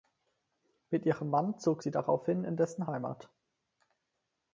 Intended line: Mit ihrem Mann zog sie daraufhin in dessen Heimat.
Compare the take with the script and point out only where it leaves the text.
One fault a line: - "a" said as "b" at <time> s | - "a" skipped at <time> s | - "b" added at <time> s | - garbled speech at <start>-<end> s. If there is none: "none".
none